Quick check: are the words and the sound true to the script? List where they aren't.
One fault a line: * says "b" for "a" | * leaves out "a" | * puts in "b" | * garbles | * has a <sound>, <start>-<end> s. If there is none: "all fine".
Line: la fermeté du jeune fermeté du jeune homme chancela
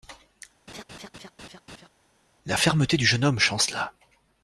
* has a laugh, 0.7-1.9 s
* leaves out "fermeté du jeune"